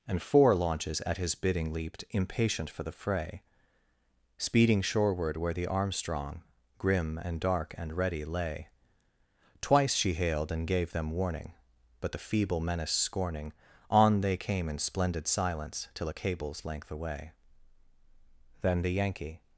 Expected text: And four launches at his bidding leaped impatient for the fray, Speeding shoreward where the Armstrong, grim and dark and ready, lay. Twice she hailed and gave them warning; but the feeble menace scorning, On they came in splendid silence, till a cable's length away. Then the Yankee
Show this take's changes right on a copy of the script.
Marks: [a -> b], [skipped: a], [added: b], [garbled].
And four launches at his bidding leaped impatient for the fray, Speeding shoreward where the Armstrong, grim and dark and ready, lay. Twice she hailed and gave them warning; but the feeble menace scorning, On they came in splendid silence, till a cable's length away. Then the Yankee